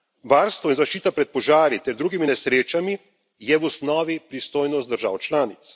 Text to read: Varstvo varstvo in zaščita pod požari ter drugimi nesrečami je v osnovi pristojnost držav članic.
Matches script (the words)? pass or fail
fail